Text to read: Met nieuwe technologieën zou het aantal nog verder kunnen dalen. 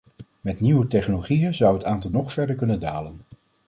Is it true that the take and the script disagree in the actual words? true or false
false